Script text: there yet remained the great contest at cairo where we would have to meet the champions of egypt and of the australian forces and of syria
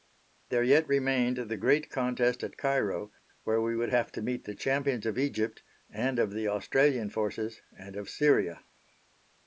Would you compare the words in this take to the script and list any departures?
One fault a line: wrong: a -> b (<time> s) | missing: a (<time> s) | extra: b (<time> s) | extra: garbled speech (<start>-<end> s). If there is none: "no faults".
no faults